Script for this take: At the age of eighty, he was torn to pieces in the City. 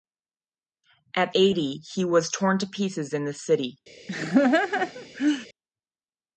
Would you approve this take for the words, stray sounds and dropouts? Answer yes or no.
no